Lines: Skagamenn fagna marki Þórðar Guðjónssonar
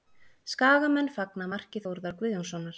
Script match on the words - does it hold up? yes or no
yes